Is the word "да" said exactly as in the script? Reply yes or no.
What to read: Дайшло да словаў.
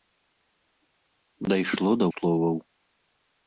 yes